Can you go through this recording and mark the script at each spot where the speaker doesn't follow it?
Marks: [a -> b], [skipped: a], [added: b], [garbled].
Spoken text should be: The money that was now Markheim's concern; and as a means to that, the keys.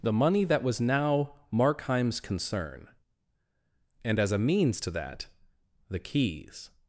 The money that was now Markheim's concern; and as a means to that, the keys.